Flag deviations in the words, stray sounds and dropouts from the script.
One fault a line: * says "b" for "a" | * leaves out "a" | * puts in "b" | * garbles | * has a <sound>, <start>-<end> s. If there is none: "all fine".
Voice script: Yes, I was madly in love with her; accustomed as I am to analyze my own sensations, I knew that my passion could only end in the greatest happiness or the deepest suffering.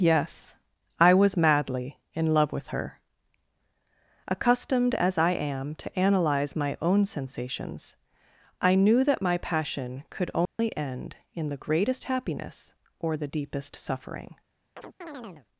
* has a dropout, 10.5-10.6 s
* has a chirp, 14.8-15.5 s